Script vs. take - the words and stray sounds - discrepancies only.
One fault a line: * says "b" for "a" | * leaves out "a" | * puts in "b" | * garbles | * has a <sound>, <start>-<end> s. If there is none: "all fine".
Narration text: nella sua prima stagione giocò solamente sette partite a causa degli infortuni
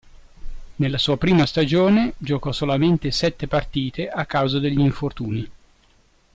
all fine